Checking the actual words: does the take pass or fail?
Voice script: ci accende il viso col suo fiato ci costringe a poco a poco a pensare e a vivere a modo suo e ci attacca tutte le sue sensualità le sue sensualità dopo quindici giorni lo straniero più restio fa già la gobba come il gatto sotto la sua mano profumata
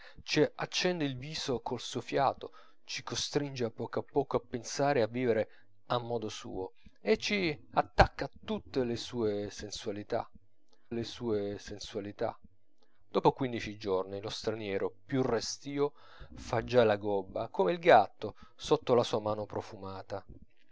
pass